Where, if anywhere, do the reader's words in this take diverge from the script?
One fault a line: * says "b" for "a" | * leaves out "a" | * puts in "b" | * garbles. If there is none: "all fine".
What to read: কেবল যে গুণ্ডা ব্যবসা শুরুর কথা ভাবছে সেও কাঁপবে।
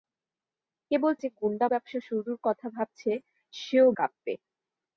all fine